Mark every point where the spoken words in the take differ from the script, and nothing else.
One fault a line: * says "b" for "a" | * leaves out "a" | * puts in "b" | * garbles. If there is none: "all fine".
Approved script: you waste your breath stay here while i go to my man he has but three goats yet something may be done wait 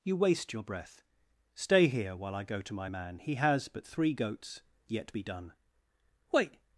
* leaves out "something may"